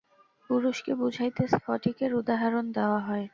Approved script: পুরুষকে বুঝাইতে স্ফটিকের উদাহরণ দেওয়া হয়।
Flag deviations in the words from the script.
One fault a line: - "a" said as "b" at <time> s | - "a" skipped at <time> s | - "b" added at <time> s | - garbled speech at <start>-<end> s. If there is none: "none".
none